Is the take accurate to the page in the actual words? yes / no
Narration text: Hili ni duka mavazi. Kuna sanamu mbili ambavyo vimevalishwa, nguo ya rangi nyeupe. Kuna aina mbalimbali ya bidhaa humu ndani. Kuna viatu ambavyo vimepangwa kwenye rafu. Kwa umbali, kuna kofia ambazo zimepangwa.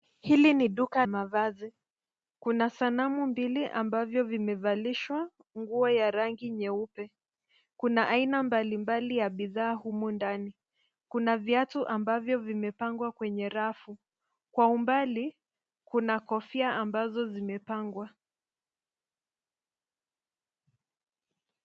yes